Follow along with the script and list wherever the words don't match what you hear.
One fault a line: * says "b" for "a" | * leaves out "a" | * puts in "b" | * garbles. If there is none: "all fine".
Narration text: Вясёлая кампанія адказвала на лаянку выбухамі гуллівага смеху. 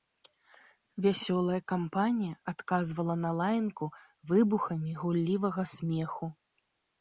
all fine